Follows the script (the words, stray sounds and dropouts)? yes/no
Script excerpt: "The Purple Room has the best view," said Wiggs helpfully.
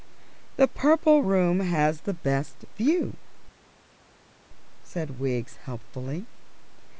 yes